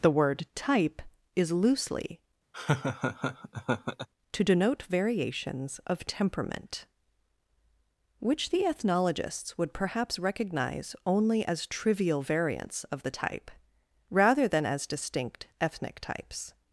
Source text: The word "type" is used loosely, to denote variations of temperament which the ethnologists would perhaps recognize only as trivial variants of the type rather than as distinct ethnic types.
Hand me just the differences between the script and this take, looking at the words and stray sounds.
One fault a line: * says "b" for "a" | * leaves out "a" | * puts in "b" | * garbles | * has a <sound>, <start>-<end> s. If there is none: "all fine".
* leaves out "used"
* has a laugh, 2.5-4.1 s